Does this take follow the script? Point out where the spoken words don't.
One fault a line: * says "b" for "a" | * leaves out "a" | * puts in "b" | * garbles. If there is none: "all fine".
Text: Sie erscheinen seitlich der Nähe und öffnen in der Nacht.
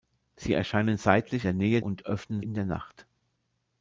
all fine